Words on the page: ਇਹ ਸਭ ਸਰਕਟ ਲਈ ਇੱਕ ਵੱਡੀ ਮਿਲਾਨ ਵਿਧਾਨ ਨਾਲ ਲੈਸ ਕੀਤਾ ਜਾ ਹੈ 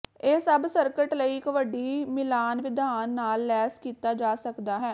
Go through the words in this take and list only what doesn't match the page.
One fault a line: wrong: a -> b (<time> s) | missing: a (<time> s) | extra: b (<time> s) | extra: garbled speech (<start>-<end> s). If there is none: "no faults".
extra: ਸਕਦਾ (4.4 s)